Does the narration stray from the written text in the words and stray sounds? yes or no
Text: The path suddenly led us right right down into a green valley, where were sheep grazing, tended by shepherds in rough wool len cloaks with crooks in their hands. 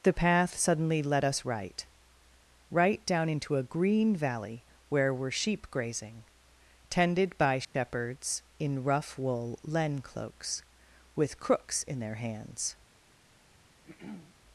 yes